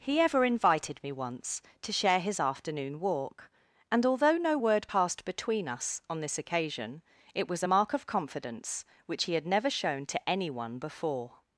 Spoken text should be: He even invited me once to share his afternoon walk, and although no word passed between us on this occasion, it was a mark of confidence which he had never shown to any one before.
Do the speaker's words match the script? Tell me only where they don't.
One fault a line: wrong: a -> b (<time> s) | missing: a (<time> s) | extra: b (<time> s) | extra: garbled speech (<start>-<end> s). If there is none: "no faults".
wrong: even -> ever (0.2 s)